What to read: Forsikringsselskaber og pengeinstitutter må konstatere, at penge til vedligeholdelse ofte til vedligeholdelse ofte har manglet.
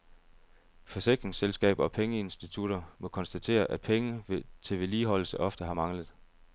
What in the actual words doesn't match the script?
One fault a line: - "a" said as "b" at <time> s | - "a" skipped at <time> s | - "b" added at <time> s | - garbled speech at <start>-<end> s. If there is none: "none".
- "til vedligeholdelse ofte" skipped at 5.6 s